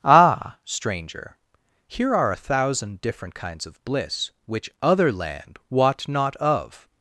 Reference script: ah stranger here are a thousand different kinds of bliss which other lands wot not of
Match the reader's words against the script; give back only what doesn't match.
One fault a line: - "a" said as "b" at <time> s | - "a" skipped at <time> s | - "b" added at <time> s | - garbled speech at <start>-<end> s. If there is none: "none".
- "lands" said as "land" at 5.1 s